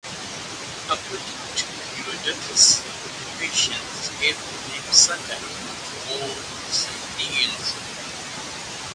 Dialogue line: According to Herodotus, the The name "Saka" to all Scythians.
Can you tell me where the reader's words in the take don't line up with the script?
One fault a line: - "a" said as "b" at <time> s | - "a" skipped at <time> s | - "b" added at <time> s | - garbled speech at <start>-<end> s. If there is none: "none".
- "Persians gave" added at 3.4 s